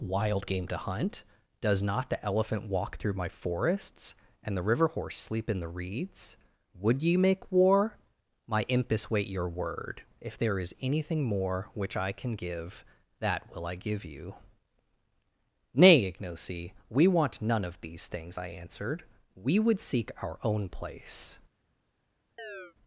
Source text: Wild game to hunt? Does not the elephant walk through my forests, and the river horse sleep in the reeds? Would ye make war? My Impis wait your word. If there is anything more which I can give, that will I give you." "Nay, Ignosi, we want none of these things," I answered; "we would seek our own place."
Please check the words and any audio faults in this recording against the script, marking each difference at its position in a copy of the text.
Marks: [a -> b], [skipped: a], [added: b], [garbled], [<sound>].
Wild game to hunt? Does not the elephant walk through my forests, and the river horse sleep in the reeds? Would ye make war? My Impis wait your word. If there is anything more which I can give, that will I give you." "Nay, Ignosi, we want none of these things," I answered; "we would seek our own place." [chirp]